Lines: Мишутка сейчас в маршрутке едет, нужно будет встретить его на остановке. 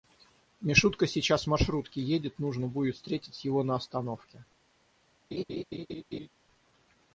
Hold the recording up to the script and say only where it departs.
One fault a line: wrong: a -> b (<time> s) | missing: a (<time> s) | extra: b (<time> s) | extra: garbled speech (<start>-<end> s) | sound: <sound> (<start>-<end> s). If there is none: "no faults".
sound: laugh (5.3-6.3 s)